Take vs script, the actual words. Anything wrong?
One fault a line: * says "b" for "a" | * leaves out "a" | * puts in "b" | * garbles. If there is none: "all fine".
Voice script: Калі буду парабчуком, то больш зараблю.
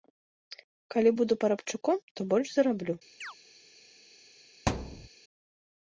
all fine